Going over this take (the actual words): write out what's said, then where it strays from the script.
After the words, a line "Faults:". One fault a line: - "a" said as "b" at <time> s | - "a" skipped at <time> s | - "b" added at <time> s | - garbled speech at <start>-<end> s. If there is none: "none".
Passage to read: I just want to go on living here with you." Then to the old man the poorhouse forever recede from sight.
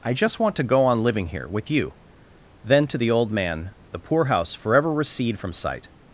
I just want to go on living here with you." Then to the old man the poorhouse forever recede from sight.
Faults:
none